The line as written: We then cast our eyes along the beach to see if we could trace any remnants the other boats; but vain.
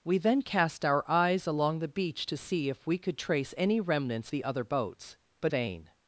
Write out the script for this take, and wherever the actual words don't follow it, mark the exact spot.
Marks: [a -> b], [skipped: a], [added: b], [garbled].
We then cast our eyes along the beach to see if we could trace any remnants the other boats; but vain.